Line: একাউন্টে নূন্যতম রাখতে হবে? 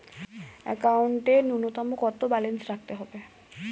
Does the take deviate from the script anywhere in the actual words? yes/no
yes